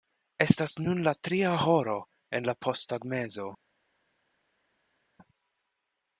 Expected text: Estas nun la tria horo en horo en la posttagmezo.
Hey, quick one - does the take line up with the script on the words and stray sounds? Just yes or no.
no